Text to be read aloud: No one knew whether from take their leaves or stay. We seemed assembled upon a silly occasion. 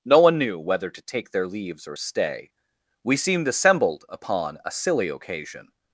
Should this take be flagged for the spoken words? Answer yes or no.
yes